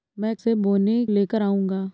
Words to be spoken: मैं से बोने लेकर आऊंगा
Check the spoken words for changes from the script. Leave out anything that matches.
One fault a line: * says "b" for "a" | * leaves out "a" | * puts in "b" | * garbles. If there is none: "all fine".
all fine